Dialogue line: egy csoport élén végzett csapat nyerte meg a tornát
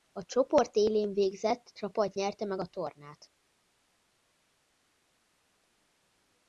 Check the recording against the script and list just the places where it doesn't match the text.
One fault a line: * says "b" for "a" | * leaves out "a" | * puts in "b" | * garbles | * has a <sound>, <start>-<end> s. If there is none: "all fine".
* says "a" for "egy"